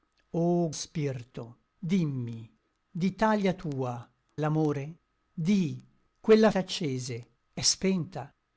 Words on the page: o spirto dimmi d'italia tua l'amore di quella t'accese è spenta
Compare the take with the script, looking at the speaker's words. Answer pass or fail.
pass